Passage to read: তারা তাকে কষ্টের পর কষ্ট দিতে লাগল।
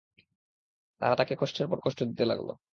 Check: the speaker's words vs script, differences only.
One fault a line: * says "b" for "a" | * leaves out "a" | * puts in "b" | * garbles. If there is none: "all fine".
all fine